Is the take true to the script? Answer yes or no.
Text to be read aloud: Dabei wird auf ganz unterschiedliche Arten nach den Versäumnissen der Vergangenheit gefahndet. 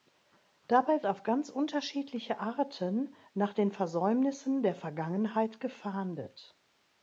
no